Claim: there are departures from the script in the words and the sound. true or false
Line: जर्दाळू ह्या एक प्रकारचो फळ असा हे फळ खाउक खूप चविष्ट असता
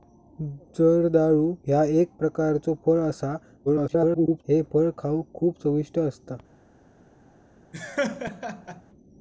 true